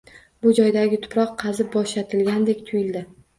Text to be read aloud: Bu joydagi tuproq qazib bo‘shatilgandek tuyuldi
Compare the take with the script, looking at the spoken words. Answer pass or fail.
pass